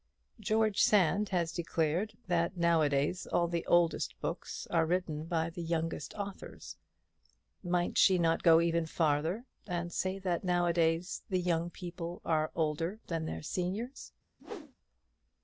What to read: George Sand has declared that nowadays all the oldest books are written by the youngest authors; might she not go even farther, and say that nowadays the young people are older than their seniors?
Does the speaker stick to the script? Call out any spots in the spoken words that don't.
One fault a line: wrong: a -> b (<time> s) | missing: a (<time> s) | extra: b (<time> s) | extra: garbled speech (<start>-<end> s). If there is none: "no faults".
no faults